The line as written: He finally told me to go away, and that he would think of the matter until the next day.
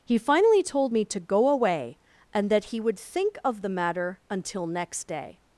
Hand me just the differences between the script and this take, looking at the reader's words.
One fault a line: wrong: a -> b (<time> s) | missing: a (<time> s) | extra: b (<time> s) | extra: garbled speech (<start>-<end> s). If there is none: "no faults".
missing: the (4.7 s)